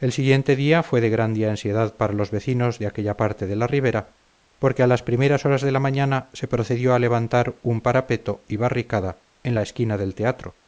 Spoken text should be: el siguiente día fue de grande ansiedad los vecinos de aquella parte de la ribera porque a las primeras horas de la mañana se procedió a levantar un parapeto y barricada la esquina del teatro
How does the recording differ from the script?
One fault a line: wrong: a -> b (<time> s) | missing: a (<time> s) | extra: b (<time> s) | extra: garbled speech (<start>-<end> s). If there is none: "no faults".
extra: para (1.9 s)
extra: en (9.4 s)